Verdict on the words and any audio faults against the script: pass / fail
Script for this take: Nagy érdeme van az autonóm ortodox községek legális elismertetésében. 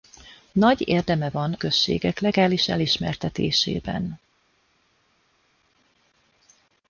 fail